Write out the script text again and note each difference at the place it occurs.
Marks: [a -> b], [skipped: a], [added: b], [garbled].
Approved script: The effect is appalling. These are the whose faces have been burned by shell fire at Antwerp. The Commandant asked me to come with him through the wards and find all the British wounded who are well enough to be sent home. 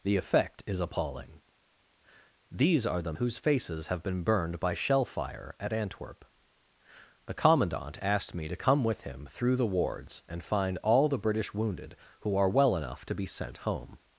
The effect is appalling. These are the whose faces have been burned by shell fire at Antwerp. The Commandant asked me to come with him through the wards and find all the British wounded who are well enough to be sent home.